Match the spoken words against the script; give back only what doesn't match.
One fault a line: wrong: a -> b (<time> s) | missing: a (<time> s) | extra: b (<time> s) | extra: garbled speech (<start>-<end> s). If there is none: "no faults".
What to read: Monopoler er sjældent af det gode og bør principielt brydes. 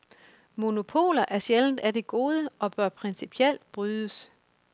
no faults